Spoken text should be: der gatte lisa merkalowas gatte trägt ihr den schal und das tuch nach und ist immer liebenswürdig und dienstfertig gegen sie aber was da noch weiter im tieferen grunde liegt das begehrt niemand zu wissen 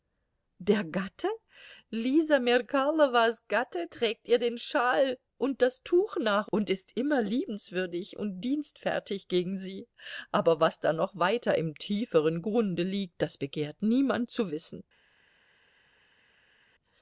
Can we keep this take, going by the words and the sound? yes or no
yes